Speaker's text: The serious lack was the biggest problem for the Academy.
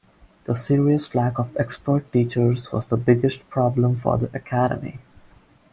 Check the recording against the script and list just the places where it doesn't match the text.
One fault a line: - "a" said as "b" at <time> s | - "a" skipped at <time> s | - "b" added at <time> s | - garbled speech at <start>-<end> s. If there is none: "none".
- "of expert teachers" added at 1.4 s